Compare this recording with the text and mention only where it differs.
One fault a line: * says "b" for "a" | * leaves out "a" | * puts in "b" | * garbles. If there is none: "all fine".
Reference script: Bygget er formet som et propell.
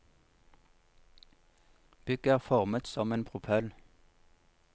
* says "en" for "et"